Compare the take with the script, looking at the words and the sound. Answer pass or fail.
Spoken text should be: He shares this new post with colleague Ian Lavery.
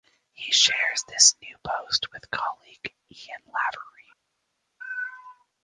pass